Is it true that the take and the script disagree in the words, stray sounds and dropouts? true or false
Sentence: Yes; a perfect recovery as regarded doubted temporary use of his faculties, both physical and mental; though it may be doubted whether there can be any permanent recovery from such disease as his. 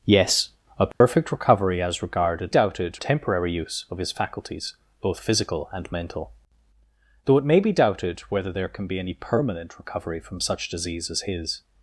true